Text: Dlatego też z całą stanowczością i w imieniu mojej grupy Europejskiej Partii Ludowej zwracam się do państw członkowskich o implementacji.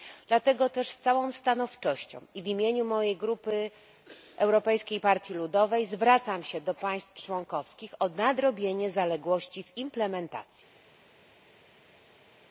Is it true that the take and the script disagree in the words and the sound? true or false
true